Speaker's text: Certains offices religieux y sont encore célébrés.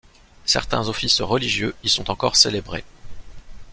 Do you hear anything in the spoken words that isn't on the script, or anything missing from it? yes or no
no